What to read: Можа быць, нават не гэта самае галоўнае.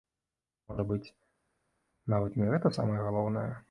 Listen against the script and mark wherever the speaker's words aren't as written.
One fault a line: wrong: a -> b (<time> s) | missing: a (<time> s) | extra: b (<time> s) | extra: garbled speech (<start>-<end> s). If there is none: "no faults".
no faults